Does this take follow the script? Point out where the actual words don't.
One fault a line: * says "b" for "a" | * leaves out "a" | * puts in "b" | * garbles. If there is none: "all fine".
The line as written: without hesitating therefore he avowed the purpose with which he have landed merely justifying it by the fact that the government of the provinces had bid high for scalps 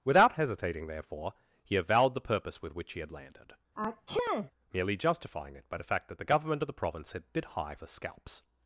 * says "had" for "have"
* says "province" for "provinces"